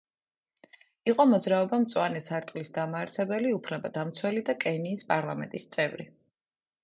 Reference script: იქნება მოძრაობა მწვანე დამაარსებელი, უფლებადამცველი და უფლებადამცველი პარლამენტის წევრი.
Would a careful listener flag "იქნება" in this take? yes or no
yes